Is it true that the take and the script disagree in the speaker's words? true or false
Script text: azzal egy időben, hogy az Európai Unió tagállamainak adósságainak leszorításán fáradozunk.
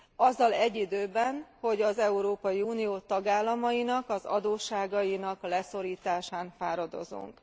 true